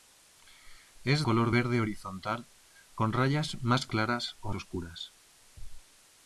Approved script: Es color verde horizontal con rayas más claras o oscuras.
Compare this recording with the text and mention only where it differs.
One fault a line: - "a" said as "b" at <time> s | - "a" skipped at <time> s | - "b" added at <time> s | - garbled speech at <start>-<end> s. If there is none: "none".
none